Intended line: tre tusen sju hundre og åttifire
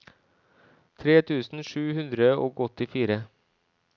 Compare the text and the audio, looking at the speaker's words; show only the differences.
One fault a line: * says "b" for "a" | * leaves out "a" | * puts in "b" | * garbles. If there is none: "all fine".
all fine